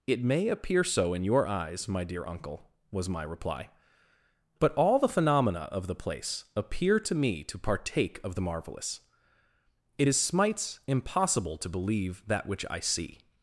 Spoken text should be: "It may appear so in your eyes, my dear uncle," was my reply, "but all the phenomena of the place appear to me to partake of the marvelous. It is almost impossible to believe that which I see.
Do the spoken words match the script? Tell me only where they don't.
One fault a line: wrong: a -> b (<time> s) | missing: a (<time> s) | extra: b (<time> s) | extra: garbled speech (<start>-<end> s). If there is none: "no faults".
wrong: almost -> smites (10.2 s)